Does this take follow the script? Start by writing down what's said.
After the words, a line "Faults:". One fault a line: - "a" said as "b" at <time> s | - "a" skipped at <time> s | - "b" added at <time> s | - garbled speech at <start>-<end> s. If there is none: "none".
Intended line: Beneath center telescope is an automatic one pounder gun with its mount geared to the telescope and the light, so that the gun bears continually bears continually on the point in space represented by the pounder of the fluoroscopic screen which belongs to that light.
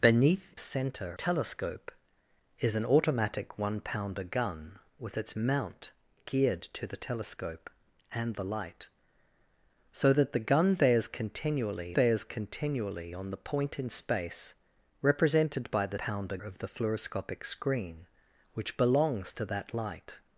Beneath center telescope is an automatic one pounder gun with its mount geared to the telescope and the light, so that the gun bears continually bears continually on the point in space represented by the pounder of the fluoroscopic screen which belongs to that light.
Faults:
none